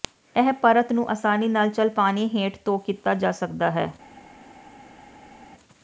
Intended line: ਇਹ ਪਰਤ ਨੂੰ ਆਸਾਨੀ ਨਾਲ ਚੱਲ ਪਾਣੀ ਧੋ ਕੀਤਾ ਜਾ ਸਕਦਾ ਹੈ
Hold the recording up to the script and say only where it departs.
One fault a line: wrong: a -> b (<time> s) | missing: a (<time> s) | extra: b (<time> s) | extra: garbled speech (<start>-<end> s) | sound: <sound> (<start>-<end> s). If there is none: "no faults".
extra: ਹੇਠ (2.3 s)